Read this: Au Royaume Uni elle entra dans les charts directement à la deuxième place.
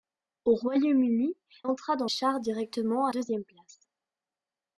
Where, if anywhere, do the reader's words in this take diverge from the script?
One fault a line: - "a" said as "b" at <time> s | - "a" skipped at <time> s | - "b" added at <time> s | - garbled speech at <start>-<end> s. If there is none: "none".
- "elle" skipped at 1.4 s
- "les" skipped at 2.1 s
- "la" skipped at 3.1 s